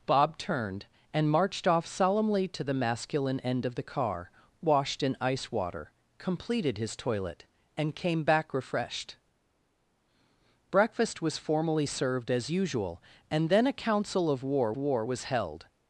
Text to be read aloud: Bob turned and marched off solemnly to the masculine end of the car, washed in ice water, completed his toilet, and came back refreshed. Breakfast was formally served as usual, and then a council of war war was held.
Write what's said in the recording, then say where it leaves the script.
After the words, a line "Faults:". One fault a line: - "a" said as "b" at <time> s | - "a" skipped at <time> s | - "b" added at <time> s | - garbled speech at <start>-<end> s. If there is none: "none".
Bob turned and marched off solemnly to the masculine end of the car, washed in ice water, completed his toilet, and came back refreshed. Breakfast was formally served as usual, and then a council of war war was held.
Faults:
none